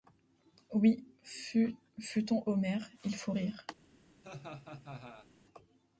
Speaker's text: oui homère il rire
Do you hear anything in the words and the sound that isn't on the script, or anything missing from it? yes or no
yes